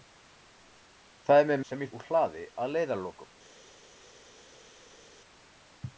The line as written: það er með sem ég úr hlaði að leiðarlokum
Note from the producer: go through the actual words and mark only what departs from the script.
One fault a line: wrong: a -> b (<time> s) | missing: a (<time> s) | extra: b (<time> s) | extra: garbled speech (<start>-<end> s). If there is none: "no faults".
no faults